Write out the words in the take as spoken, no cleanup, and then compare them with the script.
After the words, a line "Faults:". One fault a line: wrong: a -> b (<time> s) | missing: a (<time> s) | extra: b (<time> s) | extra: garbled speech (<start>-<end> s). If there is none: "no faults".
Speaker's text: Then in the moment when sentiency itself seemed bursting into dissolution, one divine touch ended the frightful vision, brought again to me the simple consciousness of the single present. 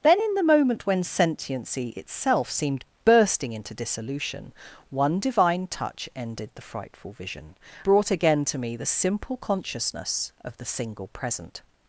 Then in the moment when sentiency itself seemed bursting into dissolution, one divine touch ended the frightful vision, brought again to me the simple consciousness of the single present.
Faults:
no faults